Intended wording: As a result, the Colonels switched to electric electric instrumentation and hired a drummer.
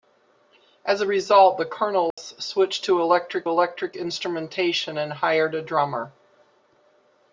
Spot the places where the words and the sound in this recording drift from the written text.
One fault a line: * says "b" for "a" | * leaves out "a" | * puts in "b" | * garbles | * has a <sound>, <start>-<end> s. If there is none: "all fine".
* has a dropout, 2.1-2.2 s